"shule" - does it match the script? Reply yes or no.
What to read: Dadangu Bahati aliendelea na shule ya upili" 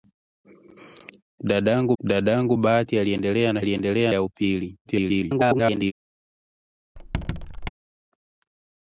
no